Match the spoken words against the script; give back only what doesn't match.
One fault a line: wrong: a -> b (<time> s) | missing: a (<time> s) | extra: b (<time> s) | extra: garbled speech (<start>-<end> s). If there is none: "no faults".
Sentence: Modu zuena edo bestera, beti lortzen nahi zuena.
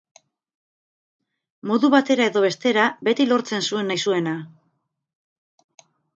wrong: zuena -> batera (1.9 s)
extra: zuen (3.7 s)